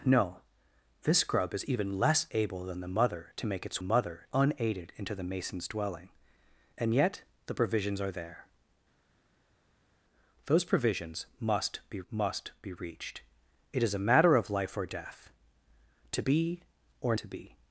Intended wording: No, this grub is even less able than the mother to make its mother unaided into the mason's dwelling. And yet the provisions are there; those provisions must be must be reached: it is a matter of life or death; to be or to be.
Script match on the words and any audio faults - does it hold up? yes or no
yes